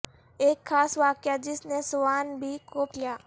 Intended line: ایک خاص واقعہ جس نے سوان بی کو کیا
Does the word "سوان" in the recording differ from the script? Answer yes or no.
no